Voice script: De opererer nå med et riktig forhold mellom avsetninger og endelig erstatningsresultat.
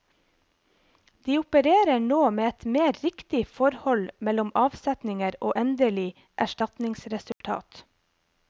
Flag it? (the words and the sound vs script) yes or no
yes